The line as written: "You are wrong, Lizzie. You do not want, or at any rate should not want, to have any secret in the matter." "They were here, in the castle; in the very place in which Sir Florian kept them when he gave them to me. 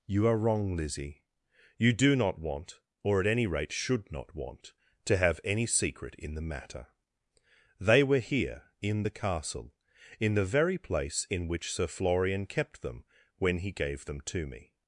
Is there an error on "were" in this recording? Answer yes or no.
no